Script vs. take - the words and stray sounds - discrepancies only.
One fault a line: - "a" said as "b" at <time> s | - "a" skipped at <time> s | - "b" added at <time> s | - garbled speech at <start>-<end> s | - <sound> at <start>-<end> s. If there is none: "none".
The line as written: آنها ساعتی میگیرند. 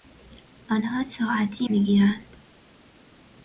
none